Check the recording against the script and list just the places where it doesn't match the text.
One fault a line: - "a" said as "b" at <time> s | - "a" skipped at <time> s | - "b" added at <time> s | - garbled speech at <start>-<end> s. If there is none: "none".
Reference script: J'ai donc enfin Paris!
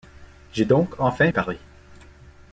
none